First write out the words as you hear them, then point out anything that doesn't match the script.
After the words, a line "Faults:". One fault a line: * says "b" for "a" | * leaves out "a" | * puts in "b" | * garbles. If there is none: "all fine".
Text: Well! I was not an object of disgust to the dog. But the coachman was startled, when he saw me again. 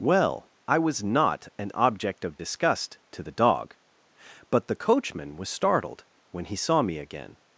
Well! I was not an object of disgust to the dog. But the coachman was startled, when he saw me again.
Faults:
all fine